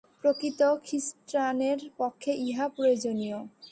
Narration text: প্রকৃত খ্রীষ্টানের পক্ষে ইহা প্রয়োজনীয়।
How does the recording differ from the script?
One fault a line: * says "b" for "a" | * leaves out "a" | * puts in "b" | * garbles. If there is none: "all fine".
all fine